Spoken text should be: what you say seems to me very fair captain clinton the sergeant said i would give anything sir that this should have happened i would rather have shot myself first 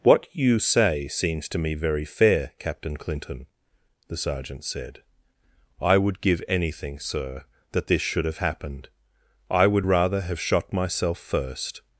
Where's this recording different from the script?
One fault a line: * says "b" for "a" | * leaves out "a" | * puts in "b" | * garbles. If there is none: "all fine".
all fine